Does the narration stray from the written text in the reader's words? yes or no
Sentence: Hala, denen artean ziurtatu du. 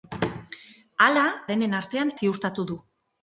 no